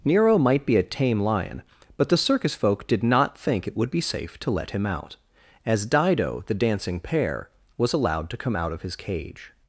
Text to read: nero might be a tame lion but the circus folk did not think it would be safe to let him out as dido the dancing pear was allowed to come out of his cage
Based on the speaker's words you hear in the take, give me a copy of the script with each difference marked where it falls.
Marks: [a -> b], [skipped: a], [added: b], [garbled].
nero might be a tame lion but the circus folk did not think it would be safe to let him out as dido the dancing pear was allowed to come out of his cage